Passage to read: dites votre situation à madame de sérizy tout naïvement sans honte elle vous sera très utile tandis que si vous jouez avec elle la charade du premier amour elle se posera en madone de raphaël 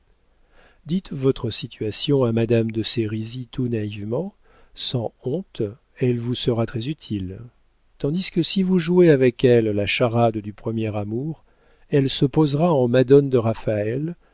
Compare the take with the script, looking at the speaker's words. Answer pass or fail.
pass